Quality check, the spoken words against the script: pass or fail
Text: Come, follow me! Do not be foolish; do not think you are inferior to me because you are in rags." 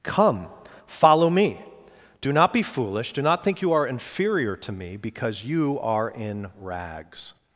pass